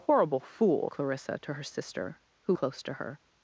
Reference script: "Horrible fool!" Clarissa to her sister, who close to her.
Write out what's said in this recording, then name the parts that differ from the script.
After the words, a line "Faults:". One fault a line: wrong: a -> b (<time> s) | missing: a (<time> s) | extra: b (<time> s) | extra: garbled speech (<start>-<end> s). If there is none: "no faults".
"Horrible fool!" Clarissa to her sister, who close to her.
Faults:
no faults